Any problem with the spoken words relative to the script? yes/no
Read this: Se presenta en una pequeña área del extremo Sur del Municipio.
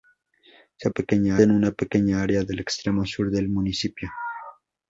yes